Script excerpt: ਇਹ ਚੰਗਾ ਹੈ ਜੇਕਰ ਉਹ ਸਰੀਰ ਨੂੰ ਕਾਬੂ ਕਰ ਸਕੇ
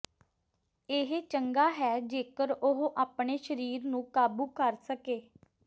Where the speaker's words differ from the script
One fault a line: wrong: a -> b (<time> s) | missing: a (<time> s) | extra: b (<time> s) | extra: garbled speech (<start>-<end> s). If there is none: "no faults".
extra: ਆਪਣੇ (3.0 s)